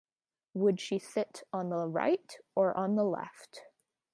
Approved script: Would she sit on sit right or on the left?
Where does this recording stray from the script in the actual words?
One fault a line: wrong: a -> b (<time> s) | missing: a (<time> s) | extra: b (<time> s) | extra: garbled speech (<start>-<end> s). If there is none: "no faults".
wrong: sit -> the (1.7 s)